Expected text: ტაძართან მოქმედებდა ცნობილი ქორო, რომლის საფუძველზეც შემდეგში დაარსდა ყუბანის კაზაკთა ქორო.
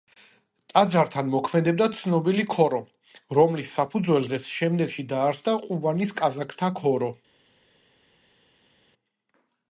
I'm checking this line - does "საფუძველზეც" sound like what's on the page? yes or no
yes